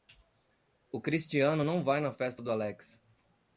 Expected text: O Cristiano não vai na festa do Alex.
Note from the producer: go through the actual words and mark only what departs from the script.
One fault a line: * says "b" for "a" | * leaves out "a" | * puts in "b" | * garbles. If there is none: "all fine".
all fine